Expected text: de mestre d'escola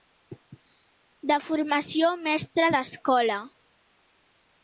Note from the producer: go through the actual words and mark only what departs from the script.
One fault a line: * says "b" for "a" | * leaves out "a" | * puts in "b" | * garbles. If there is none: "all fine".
* puts in "formació"